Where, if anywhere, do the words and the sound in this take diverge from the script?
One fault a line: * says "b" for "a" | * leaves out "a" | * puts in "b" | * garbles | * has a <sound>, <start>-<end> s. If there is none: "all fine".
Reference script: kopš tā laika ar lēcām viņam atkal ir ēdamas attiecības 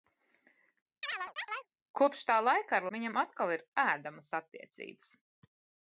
* has a chirp, 1.0-1.7 s
* leaves out "lēcām"